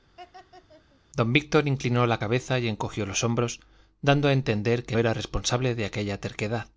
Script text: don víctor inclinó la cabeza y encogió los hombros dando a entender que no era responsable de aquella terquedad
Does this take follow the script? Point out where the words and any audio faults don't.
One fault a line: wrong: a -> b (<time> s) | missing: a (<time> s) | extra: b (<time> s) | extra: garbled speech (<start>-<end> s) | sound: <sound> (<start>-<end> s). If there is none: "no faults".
sound: laugh (0.2-1.0 s)
missing: no (5.0 s)